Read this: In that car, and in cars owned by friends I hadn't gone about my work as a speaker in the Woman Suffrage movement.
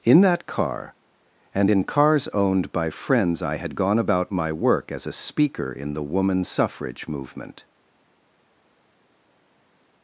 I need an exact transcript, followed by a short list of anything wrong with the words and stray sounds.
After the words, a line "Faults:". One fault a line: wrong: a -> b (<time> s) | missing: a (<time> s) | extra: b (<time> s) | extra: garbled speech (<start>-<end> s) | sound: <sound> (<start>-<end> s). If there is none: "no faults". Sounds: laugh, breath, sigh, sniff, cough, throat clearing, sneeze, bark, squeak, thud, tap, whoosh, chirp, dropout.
In that car, and in cars owned by friends I had gone about my work as a speaker in the Woman Suffrage movement.
Faults:
wrong: hadn't -> had (3.6 s)